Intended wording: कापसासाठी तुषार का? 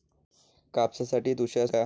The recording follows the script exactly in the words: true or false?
true